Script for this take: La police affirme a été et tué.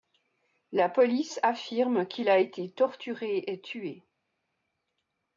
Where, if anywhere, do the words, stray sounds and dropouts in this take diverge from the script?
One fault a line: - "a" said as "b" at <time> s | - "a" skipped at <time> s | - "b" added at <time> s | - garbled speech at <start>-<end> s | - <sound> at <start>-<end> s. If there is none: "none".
- "qu'il" added at 2.1 s
- "torturé" added at 2.7 s